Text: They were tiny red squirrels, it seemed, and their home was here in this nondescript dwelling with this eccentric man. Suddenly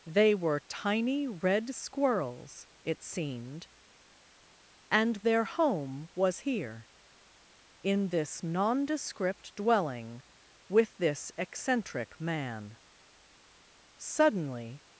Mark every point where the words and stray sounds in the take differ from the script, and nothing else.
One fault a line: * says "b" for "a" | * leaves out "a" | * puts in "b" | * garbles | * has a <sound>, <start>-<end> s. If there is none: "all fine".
all fine